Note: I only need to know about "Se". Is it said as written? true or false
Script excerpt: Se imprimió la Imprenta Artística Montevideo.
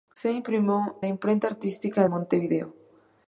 true